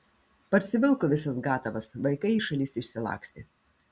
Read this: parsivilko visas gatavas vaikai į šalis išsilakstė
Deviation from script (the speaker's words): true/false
false